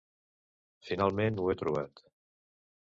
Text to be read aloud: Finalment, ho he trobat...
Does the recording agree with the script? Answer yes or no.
yes